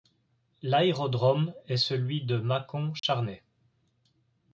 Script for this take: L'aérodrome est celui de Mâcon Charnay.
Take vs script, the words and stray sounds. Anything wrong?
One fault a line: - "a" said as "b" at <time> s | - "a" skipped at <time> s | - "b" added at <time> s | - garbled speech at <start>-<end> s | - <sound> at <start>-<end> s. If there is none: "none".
- dropout at 3.0-3.0 s